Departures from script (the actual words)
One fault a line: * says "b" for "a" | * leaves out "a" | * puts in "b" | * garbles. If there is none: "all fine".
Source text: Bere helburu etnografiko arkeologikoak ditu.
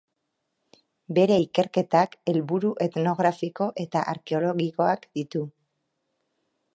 * puts in "ikerketak"
* puts in "eta"